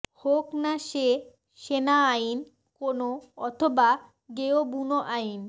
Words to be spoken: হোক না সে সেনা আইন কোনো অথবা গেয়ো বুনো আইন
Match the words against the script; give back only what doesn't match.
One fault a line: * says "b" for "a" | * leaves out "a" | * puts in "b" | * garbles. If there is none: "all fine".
all fine